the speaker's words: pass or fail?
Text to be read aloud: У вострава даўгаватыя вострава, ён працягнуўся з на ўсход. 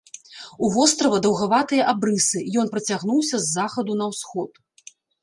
fail